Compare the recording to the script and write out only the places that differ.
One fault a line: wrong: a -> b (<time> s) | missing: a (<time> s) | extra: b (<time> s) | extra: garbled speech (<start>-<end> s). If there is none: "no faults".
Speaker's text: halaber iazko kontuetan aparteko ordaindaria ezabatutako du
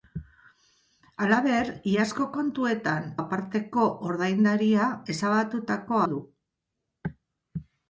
no faults